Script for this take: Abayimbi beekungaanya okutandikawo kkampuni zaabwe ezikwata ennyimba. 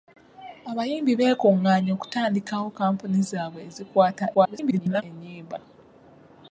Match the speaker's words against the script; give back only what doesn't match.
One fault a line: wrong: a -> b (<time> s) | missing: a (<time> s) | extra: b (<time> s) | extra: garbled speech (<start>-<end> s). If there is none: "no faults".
extra: garbled speech (4.3-5.0 s)